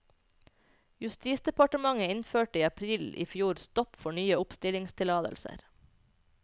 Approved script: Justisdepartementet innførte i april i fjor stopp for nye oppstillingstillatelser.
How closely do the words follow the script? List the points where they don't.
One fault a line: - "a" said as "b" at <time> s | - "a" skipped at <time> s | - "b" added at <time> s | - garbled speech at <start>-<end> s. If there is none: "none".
none